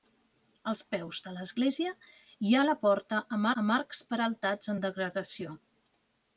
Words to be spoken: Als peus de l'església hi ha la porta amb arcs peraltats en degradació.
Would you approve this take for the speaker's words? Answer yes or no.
no